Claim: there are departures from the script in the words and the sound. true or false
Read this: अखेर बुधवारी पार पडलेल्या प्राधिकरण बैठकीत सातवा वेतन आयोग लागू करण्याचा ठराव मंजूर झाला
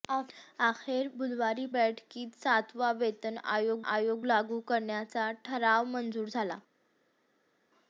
true